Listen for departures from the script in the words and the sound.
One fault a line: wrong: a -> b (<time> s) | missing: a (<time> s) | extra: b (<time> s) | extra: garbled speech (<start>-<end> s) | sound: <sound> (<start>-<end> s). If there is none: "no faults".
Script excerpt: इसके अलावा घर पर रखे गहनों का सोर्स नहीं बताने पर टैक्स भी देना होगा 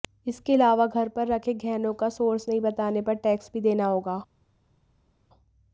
no faults